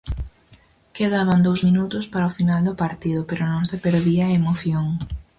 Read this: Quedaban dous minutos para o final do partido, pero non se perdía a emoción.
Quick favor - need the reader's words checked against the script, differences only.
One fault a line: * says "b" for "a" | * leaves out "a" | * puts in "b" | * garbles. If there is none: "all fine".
all fine